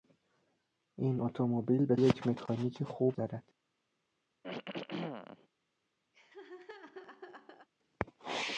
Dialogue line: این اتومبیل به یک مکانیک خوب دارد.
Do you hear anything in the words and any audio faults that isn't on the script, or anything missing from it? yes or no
yes